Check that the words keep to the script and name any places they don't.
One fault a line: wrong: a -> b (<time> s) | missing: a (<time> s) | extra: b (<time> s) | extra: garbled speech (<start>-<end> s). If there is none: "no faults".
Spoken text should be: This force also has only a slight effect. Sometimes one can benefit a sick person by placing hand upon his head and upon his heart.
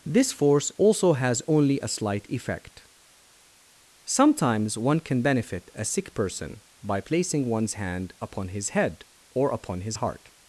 extra: one's (7.5 s)
wrong: and -> or (9.3 s)